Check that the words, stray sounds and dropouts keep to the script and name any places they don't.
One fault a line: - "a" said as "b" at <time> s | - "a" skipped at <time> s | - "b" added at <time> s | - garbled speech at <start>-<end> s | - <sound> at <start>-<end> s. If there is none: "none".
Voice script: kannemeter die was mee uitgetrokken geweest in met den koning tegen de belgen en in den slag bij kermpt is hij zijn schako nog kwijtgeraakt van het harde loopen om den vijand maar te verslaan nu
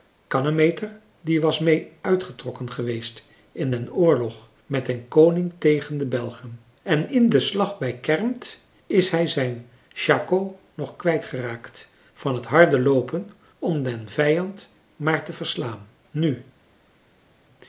- "den oorlog" added at 3.7 s